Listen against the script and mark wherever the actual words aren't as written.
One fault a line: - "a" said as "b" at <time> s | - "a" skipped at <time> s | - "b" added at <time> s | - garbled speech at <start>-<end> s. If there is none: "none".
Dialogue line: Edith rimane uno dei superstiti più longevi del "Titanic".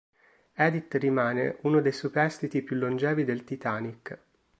none